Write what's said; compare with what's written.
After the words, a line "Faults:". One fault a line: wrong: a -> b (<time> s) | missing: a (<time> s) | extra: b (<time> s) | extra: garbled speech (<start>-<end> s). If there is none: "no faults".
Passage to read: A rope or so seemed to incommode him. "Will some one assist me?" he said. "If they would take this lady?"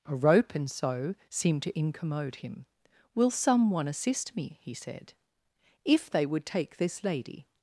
A rope and so seemed to incommode him. "Will some one assist me?" he said. "If they would take this lady?"
Faults:
wrong: or -> and (0.6 s)